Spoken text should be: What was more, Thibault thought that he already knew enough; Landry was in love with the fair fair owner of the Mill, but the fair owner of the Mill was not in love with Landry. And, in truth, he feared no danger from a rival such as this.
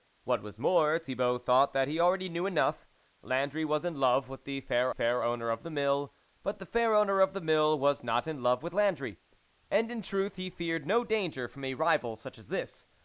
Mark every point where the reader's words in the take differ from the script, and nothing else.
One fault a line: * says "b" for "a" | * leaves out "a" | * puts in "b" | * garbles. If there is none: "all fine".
all fine